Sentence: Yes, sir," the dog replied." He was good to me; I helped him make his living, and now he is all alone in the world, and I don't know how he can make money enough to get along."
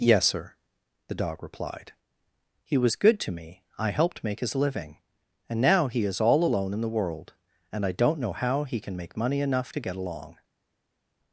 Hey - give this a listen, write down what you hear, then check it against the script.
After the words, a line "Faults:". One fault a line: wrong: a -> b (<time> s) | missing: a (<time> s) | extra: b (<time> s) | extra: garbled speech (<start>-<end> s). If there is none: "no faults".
Yes, sir," the dog replied." He was good to me; I helped make his living, and now he is all alone in the world, and I don't know how he can make money enough to get along."
Faults:
missing: him (4.2 s)